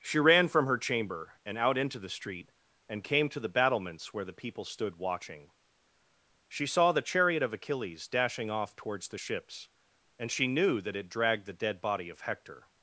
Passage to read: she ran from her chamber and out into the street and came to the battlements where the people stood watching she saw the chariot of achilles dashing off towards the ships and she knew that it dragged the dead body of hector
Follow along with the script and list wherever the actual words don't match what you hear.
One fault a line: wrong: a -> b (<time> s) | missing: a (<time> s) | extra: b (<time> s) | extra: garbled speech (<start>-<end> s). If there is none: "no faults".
no faults